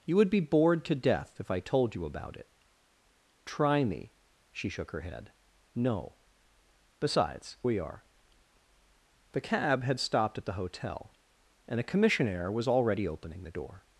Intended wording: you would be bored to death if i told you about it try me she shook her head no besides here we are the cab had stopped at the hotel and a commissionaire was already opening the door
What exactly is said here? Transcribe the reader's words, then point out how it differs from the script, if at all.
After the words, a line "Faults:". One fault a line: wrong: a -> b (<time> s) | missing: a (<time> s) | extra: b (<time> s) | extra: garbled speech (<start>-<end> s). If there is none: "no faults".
you would be bored to death if i told you about it try me she shook her head no besides we are the cab had stopped at the hotel and a commissionaire was already opening the door
Faults:
missing: here (7.6 s)